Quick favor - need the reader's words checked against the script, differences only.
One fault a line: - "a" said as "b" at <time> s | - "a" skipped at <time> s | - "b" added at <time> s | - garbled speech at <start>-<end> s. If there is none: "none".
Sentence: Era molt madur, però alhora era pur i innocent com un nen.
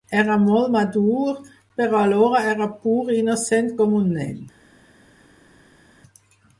none